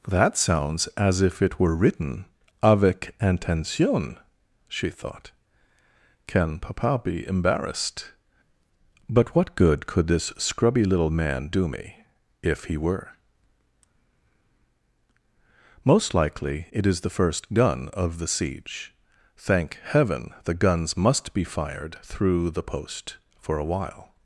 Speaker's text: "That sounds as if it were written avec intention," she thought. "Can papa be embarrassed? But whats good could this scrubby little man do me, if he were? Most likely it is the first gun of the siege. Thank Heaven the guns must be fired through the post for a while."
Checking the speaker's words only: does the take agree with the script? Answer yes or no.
no